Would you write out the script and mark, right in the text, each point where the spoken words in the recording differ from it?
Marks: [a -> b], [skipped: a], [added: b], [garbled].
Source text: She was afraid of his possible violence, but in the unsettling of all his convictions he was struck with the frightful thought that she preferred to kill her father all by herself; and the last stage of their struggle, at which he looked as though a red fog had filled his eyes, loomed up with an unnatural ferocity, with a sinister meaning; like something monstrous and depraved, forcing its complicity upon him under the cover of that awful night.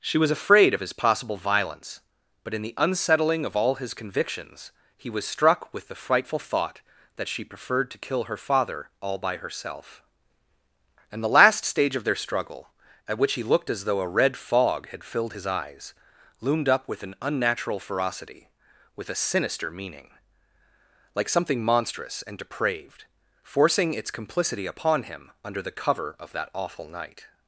She was afraid of his possible violence, but in the unsettling of all his convictions he was struck with the frightful thought that she preferred to kill her father all by herself; and the last stage of their struggle, at which he looked as though a red fog had filled his eyes, loomed up with an unnatural ferocity, with a sinister meaning; like something monstrous and depraved, forcing its complicity upon him under the cover of that awful night.